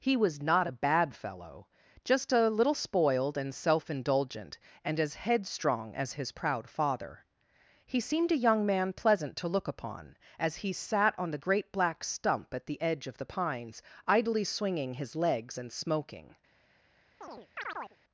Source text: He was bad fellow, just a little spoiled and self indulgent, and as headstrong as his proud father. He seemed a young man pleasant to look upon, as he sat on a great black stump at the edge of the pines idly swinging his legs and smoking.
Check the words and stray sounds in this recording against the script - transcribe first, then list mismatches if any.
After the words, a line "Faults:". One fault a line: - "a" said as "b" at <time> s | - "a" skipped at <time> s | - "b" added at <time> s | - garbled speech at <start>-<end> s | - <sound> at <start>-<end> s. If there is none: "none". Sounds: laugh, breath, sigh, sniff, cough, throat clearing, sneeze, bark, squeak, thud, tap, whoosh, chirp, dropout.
He was not a bad fellow, just a little spoiled and self indulgent, and as headstrong as his proud father. He seemed a young man pleasant to look upon, as he sat on the great black stump at the edge of the pines idly swinging his legs and smoking.
Faults:
- "not a" added at 0.4 s
- "a" said as "the" at 11.3 s
- chirp at 17.2-18.0 s